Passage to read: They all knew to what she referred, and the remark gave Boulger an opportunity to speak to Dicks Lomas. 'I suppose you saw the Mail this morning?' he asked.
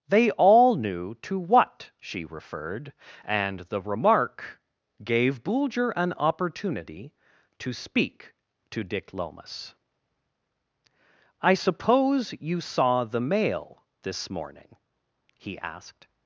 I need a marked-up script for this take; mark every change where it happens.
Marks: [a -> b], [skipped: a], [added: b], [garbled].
They all knew to what she referred, and the remark gave Boulger an opportunity to speak to [Dicks -> Dick] Lomas. 'I suppose you saw the Mail this morning?' he asked.